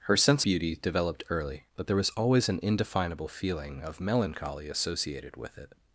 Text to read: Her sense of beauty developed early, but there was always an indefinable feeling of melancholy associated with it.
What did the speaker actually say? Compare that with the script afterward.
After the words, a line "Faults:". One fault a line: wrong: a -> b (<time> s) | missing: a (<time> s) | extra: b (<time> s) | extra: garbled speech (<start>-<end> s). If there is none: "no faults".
Her sense beauty developed early, but there was always an indefinable feeling of melancholy associated with it.
Faults:
missing: of (0.5 s)